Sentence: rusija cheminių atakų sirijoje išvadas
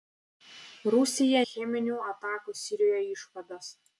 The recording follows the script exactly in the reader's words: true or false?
true